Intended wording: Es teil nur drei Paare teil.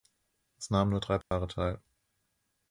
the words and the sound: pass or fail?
fail